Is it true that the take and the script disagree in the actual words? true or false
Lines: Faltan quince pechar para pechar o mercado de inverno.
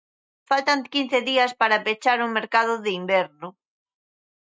true